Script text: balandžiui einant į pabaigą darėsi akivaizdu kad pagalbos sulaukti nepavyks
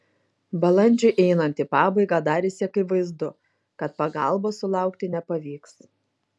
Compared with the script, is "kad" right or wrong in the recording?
right